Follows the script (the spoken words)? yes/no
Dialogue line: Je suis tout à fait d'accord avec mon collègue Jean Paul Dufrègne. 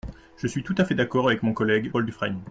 no